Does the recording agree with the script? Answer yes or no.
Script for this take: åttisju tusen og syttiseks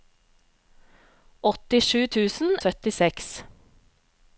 yes